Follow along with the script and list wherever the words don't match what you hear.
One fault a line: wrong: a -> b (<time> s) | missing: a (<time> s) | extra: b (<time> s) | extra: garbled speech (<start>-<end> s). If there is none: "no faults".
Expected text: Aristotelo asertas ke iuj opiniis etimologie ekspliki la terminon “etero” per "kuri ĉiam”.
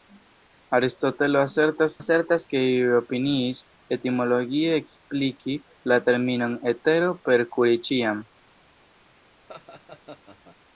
extra: asertas (2.0 s)